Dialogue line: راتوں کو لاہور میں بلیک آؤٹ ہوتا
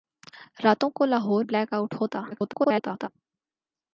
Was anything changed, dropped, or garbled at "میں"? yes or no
yes